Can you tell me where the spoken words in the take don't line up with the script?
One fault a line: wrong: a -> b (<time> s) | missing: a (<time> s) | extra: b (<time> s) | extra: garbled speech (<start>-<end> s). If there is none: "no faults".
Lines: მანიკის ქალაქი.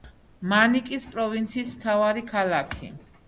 extra: პროვინციის მთავარი (1.1 s)